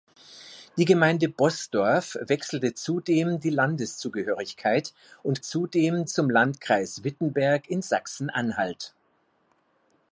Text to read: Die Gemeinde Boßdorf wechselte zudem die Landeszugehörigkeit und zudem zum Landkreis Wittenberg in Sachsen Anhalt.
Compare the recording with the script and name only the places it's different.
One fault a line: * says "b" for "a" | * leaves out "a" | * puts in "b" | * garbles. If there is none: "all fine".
all fine